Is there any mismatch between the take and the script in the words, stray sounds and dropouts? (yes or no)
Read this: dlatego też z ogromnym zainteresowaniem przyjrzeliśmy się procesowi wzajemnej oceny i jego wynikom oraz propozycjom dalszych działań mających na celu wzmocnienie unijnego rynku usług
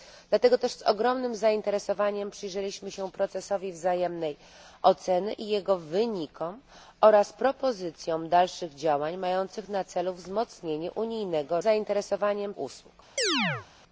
yes